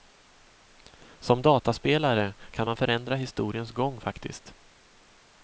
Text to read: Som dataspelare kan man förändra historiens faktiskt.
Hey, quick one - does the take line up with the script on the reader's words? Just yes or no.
no